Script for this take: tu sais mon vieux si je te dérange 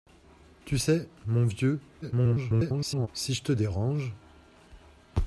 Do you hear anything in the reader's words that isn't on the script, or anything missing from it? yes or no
yes